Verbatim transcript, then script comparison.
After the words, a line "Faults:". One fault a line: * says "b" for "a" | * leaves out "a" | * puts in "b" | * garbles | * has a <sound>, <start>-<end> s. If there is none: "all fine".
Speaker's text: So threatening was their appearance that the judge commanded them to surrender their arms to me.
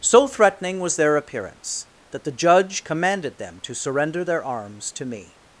So threatening was their appearance that the judge commanded them to surrender their arms to me.
Faults:
all fine